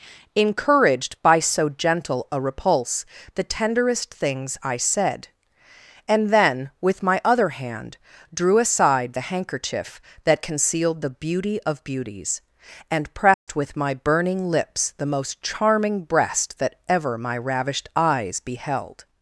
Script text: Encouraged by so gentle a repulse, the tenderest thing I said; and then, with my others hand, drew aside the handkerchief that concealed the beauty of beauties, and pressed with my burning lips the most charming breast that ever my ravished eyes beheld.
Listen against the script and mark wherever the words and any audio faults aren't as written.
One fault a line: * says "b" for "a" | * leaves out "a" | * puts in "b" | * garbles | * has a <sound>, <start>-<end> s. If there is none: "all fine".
* says "things" for "thing"
* says "other" for "others"
* has a dropout, 13.3-13.5 s